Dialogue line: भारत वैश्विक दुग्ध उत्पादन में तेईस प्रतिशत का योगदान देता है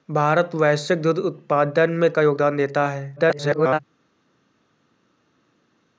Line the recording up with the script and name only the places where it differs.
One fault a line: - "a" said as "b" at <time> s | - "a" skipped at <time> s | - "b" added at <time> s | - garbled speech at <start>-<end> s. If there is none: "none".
- "तेईस प्रतिशत" skipped at 2.1 s
- garbled speech at 3.2-3.8 s